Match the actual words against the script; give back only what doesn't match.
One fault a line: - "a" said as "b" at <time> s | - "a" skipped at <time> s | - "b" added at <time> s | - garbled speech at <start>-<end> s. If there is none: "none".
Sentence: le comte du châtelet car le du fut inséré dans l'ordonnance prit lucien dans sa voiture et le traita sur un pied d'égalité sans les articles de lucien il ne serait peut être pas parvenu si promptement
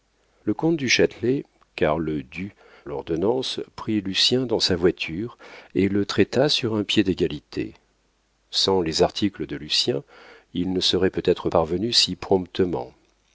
- "fut inséré dans" skipped at 2.5 s
- "pas" skipped at 11.5 s